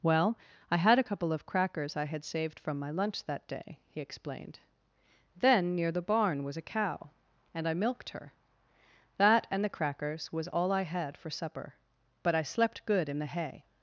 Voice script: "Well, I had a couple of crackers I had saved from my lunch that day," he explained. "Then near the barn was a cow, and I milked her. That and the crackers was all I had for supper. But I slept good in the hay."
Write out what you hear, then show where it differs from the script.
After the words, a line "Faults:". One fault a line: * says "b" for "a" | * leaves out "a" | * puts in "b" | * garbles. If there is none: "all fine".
"Well, I had a couple of crackers I had saved from my lunch that day," he explained. "Then near the barn was a cow, and I milked her. That and the crackers was all I had for supper. But I slept good in the hay."
Faults:
all fine